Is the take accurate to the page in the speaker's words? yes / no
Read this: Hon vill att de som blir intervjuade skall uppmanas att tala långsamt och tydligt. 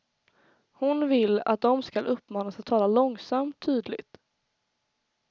no